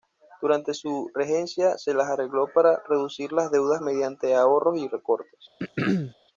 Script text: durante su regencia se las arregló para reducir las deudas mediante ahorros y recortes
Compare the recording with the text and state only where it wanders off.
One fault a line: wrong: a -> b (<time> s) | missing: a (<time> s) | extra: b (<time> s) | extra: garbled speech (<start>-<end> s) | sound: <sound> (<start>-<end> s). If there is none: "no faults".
sound: throat clearing (5.6-6.1 s)